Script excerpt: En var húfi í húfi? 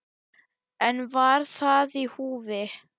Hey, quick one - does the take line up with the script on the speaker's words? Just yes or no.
no